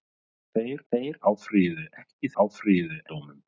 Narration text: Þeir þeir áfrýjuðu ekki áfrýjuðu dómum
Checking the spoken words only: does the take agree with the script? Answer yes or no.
yes